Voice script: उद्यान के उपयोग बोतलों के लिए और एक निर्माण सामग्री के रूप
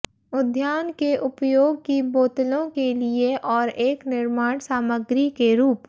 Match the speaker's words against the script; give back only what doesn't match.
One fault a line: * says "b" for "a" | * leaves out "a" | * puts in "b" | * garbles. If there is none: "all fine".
* puts in "की"